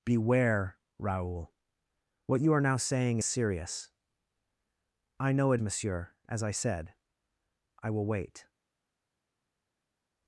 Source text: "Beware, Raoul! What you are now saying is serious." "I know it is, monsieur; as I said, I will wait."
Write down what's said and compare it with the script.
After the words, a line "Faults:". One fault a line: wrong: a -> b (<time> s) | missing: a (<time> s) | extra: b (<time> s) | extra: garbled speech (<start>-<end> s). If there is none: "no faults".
"Beware, Raoul! What you are now saying serious." "I know it monsieur; as I said, I will wait."
Faults:
missing: is (3.2 s)
missing: is (5.6 s)